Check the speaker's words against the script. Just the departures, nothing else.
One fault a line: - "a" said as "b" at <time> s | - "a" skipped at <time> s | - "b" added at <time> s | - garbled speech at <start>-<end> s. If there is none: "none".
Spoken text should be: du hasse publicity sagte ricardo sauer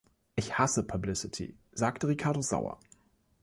- "du" said as "ich" at 0.3 s